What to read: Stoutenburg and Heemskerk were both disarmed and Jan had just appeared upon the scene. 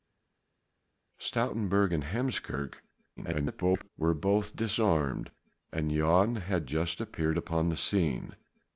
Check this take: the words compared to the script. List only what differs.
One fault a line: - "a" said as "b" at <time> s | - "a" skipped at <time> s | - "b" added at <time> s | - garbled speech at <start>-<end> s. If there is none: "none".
- garbled speech at 3.2-3.9 s